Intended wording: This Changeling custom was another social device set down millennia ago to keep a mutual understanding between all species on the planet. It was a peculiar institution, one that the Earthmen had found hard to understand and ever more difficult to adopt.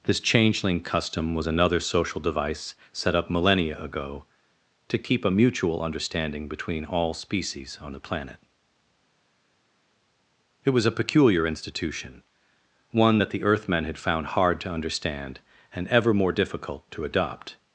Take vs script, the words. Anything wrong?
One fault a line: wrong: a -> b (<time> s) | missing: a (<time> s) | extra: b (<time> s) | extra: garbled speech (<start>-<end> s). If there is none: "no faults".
wrong: down -> up (3.1 s)